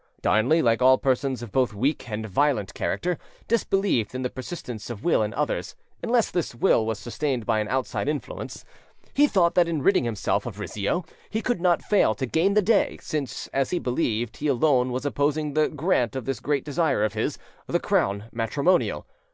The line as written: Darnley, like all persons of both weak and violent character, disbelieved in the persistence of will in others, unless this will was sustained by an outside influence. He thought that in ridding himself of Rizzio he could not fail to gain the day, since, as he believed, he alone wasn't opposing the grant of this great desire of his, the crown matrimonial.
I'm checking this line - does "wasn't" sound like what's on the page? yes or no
no